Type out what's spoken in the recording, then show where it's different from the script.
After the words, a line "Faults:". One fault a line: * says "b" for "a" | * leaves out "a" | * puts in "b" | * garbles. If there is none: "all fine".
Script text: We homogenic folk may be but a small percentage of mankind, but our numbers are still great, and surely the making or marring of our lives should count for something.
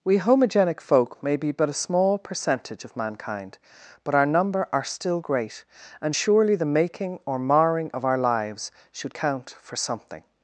We homogenic folk may be but a small percentage of mankind, but our number are still great, and surely the making or marring of our lives should count for something.
Faults:
* says "number" for "numbers"